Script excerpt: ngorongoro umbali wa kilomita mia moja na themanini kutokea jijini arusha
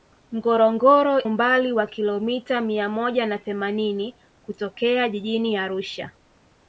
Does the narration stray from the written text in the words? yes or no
no